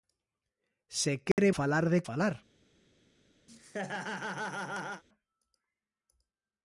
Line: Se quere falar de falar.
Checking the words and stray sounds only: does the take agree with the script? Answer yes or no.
no